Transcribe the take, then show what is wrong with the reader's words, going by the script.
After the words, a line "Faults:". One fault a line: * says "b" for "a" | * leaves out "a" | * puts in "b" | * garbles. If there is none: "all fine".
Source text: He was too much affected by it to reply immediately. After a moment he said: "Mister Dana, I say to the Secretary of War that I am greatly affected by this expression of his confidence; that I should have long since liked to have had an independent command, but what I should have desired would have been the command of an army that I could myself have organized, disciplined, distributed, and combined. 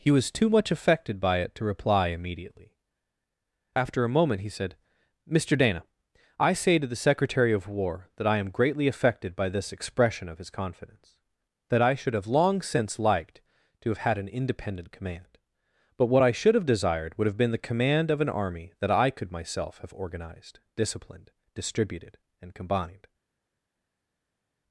He was too much affected by it to reply immediately. After a moment he said: "Mister Dana, I say to the Secretary of War that I am greatly affected by this expression of his confidence; that I should have long since liked to have had an independent command, but what I should have desired would have been the command of an army that I could myself have organized, disciplined, distributed, and combined.
Faults:
all fine